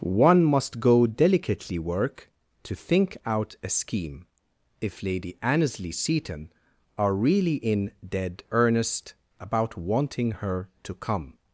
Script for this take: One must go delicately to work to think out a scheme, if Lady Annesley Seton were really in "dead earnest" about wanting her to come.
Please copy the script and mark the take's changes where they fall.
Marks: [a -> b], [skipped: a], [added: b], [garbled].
One must go delicately [skipped: to] work to think out a scheme, if Lady Annesley Seton [were -> are] really in "dead earnest" about wanting her to come.